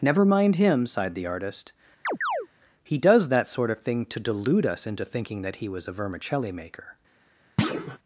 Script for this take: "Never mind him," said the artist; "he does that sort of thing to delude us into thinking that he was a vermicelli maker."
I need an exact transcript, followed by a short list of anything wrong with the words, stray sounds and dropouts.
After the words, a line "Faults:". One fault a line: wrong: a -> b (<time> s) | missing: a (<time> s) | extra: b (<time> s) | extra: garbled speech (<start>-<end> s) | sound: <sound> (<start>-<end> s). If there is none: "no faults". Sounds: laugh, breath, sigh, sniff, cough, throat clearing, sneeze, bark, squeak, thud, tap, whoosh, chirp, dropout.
"Never mind him," sighed the artist; "he does that sort of thing to delude us into thinking that he was a vermicelli maker."
Faults:
wrong: said -> sighed (0.9 s)
sound: chirp (2.0-2.5 s)
sound: thud (7.6-8.0 s)